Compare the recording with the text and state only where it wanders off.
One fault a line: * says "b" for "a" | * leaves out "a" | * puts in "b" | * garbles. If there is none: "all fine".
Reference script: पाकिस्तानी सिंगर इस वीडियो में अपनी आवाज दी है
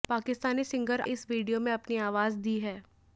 all fine